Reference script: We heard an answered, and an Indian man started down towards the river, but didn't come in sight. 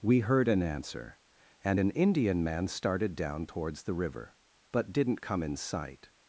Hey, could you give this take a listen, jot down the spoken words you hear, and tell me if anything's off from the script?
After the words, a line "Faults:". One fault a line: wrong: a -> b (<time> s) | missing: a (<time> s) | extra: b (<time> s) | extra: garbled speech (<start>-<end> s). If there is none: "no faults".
We heard an answer, and an Indian man started down towards the river, but didn't come in sight.
Faults:
wrong: answered -> answer (0.6 s)